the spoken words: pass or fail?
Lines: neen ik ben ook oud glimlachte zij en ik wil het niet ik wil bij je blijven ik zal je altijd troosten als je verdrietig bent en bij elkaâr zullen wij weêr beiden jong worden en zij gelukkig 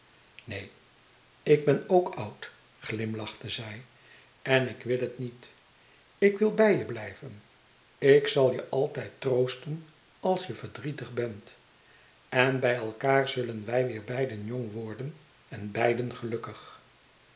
fail